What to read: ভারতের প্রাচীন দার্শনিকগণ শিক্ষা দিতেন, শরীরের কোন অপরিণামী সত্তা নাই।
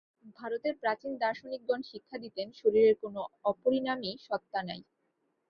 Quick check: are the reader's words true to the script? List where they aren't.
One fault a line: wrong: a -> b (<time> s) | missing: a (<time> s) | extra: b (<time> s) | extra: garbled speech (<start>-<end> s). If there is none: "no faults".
no faults